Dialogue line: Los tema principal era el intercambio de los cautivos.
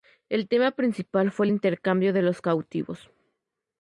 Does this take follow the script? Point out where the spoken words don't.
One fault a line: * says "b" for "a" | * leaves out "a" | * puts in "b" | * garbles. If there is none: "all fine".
* says "El" for "Los"
* says "fue" for "era"